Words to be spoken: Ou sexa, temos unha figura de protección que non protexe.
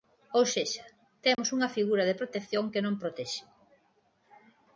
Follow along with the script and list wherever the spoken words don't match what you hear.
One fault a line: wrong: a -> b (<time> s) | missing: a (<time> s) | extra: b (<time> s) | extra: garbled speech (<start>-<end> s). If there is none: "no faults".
no faults